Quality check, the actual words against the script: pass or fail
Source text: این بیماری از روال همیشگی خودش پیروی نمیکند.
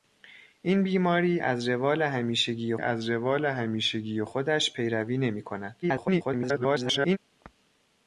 fail